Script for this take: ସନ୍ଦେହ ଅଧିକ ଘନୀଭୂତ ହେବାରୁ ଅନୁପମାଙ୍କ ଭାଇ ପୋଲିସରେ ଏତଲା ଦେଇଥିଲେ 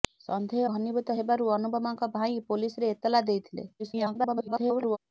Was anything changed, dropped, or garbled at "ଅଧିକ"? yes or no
yes